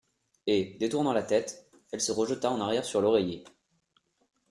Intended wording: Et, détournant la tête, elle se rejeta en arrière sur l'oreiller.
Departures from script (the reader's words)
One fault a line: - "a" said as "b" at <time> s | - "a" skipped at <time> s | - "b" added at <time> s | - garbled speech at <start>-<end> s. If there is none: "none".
none